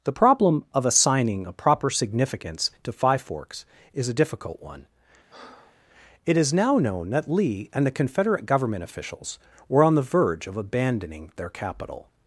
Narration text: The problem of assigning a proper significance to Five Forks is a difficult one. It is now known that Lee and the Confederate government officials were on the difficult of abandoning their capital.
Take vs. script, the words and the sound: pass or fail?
fail